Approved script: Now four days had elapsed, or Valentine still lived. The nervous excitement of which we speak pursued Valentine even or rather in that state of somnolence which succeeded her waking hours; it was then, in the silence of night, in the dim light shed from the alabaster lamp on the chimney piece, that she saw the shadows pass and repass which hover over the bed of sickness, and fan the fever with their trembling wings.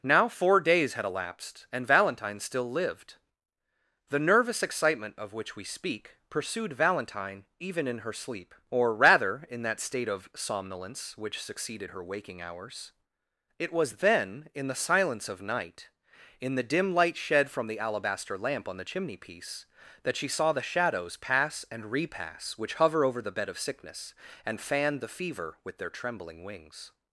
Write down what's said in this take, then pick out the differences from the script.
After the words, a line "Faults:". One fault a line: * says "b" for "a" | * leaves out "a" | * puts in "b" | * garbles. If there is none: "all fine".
Now four days had elapsed, and Valentine still lived. The nervous excitement of which we speak pursued Valentine even in her sleep, or rather in that state of somnolence which succeeded her waking hours; it was then, in the silence of night, in the dim light shed from the alabaster lamp on the chimney piece, that she saw the shadows pass and repass which hover over the bed of sickness, and fan the fever with their trembling wings.
Faults:
* says "and" for "or"
* puts in "in her sleep"